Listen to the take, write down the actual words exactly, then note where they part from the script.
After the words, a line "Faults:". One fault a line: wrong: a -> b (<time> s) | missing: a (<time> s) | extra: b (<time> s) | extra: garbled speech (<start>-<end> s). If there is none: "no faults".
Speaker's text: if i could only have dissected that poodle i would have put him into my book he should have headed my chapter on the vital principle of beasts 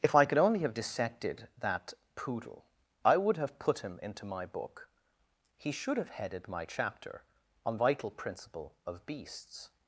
if i could only have dissected that poodle i would have put him into my book he should have headed my chapter on vital principle of beasts
Faults:
missing: the (7.8 s)